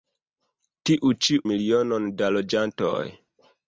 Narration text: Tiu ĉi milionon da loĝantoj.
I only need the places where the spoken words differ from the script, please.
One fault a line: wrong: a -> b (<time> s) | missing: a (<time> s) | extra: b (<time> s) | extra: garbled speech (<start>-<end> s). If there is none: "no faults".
no faults